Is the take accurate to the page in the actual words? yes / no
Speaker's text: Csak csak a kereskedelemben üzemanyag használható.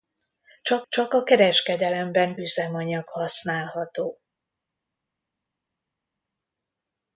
yes